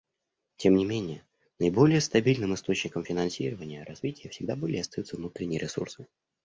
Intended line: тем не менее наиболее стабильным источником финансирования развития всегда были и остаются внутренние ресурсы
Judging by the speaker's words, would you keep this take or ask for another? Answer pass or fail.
pass